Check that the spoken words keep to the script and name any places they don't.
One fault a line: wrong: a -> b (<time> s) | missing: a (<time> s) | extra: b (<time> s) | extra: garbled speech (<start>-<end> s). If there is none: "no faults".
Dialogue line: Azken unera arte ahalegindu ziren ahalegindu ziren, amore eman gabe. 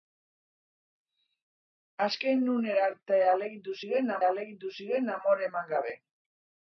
no faults